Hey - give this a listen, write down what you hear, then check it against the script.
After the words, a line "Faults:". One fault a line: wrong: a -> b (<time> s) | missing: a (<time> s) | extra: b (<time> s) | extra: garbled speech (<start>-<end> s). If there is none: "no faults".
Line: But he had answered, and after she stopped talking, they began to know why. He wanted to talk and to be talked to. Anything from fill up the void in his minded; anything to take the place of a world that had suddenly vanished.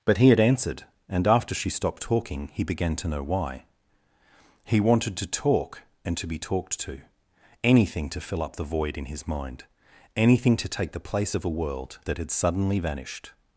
But he had answered, and after she stopped talking, he began to know why. He wanted to talk and to be talked to. Anything to fill up the void in his mind; anything to take the place of a world that had suddenly vanished.
Faults:
wrong: they -> he (2.5 s)
wrong: from -> to (8.1 s)
wrong: minded -> mind (9.3 s)